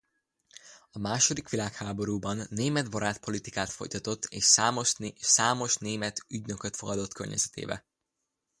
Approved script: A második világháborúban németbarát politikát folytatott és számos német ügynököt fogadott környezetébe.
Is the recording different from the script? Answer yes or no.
no